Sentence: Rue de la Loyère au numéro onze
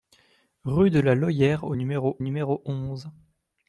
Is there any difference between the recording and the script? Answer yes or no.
yes